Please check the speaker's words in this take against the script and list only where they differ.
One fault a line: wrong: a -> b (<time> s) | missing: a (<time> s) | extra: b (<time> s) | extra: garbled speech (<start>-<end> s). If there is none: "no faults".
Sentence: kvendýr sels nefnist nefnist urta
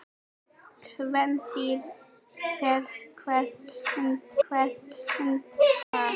no faults